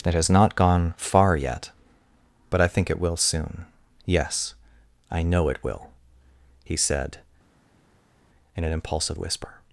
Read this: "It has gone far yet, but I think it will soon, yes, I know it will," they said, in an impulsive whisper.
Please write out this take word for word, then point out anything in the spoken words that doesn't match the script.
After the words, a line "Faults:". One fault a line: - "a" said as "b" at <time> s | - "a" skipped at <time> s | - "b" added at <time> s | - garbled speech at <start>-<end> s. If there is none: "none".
"It has not gone far yet, but I think it will soon, yes, I know it will," he said, in an impulsive whisper.
Faults:
- "not" added at 0.3 s
- "they" said as "he" at 6.7 s